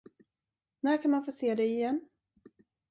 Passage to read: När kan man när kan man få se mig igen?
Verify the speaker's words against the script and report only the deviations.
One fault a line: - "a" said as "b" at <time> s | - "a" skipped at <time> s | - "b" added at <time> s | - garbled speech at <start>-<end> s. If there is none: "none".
- "när kan man" skipped at 1.2 s
- "mig" said as "dig" at 1.6 s